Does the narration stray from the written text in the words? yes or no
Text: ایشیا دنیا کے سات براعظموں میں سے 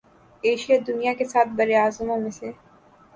no